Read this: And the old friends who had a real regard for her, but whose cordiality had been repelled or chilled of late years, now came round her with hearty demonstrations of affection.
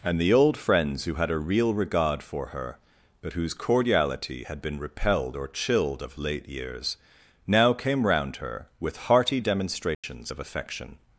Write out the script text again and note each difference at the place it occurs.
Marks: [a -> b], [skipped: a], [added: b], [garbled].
And the old friends who had a real regard for her, but whose cordiality had been repelled or chilled of late years, now came round her with hearty demonstrations of affection.